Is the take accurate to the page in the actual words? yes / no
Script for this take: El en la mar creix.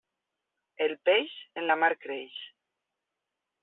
no